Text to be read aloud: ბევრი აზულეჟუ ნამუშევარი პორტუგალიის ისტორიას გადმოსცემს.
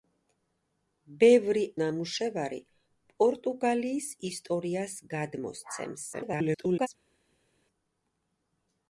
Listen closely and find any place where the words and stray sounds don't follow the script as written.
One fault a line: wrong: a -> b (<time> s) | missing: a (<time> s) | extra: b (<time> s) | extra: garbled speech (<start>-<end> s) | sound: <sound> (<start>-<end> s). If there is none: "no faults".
missing: აზულეჟუ (1.6 s)
extra: garbled speech (6.1-6.9 s)